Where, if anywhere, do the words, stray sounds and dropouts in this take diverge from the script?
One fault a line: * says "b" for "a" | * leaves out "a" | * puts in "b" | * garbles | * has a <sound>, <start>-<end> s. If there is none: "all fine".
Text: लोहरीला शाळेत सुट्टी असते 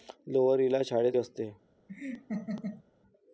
* leaves out "सुट्टी"
* has a laugh, 1.9-2.8 s